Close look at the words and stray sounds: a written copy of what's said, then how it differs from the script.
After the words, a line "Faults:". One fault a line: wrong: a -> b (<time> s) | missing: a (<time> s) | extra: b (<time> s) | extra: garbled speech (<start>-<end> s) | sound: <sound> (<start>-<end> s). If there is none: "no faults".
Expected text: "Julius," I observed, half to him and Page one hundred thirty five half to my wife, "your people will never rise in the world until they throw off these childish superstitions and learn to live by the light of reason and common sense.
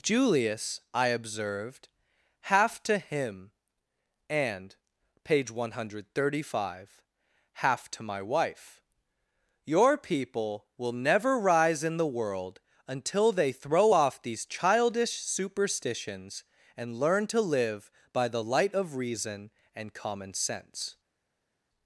"Julius," I observed, half to him and Page one hundred thirty five half to my wife, "your people will never rise in the world until they throw off these childish superstitions and learn to live by the light of reason and common sense.
Faults:
no faults